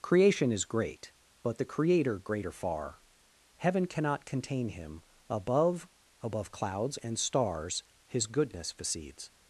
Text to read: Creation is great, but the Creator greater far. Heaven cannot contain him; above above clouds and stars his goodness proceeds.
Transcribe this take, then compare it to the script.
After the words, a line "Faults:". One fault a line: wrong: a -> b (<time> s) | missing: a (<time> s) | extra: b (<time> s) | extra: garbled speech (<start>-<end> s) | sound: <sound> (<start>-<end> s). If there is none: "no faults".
Creation is great, but the Creator greater far. Heaven cannot contain him; above above clouds and stars his goodness proceeds.
Faults:
no faults